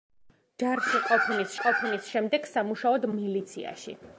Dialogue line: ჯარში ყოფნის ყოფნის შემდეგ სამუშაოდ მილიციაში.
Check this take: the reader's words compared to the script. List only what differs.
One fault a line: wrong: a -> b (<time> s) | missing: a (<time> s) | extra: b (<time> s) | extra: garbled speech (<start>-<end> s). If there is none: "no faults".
no faults